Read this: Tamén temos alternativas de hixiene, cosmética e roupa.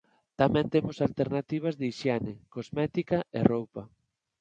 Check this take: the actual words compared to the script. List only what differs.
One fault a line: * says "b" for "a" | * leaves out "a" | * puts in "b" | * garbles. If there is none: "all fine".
all fine